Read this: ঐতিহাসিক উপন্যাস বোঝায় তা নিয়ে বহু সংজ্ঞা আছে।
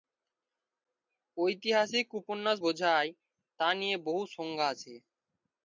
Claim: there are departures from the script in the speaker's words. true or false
false